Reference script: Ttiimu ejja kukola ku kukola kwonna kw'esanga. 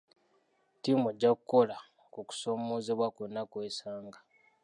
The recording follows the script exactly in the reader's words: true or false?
false